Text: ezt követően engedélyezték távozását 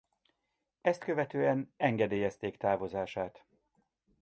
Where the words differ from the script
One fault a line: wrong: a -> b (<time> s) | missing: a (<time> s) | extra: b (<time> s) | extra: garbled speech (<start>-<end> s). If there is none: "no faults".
no faults